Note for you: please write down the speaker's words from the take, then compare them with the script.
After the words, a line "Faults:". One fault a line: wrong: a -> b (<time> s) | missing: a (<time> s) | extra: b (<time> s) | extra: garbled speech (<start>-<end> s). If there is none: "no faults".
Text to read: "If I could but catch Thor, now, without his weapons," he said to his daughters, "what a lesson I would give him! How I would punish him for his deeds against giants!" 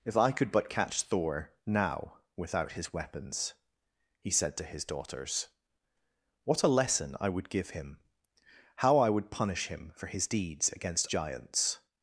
"If I could but catch Thor, now, without his weapons," he said to his daughters, "what a lesson I would give him! How I would punish him for his deeds against giants!"
Faults:
no faults